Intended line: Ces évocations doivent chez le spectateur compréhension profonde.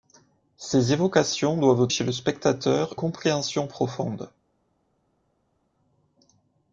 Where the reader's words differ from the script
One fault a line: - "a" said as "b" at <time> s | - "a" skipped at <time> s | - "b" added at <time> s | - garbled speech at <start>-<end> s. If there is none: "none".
none